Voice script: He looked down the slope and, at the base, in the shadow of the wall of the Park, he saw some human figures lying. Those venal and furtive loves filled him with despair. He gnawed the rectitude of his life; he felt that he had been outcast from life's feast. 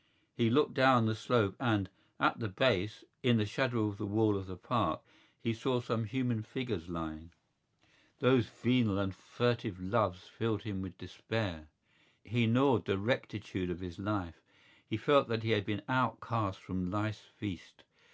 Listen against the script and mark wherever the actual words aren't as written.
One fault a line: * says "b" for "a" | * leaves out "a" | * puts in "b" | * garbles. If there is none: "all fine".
all fine